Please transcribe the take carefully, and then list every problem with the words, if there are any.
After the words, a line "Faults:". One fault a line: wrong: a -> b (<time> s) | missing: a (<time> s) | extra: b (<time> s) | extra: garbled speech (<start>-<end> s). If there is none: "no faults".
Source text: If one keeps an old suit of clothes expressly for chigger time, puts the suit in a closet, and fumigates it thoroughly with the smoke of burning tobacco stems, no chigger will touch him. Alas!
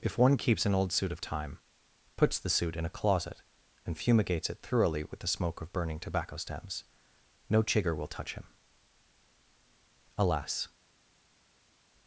If one keeps an old suit of time, puts the suit in a closet, and fumigates it thoroughly with the smoke of burning tobacco stems, no chigger will touch him. Alas!
Faults:
missing: clothes expressly for chigger (1.2 s)